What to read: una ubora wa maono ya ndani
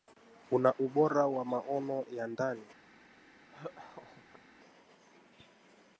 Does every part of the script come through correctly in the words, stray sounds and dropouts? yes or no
no